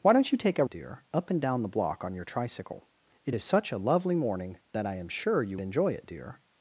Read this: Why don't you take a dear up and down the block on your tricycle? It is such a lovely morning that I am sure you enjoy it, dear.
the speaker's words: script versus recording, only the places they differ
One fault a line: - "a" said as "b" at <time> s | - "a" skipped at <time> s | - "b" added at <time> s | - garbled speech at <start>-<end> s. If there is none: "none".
none